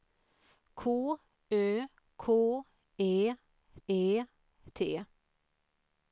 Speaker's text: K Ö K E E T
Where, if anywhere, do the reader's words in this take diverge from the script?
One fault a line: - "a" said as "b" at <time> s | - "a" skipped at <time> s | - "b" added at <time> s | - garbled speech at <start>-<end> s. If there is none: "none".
none